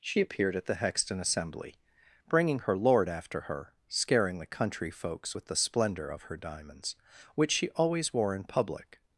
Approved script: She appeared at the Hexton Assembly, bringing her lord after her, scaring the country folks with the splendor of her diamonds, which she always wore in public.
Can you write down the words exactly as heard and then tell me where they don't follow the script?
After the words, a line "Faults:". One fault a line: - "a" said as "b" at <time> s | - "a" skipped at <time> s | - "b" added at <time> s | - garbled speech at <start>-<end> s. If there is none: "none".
She appeared at the Hexton Assembly, bringing her lord after her, scaring the country folks with the splendor of her diamonds, which she always wore in public.
Faults:
none